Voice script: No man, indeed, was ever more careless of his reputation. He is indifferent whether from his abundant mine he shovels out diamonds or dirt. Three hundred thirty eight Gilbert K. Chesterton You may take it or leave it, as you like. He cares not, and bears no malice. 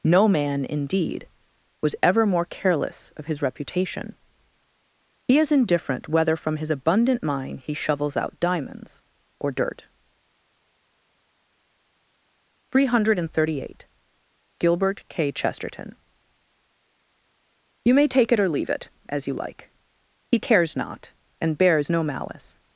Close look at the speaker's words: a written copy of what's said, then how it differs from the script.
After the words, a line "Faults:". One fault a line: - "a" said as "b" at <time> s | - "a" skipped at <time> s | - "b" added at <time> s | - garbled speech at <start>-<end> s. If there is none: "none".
No man, indeed, was ever more careless of his reputation. He is indifferent whether from his abundant mine he shovels out diamonds or dirt. Three hundred thirty eight Gilbert K. Chesterton You may take it or leave it, as you like. He cares not, and bears no malice.
Faults:
none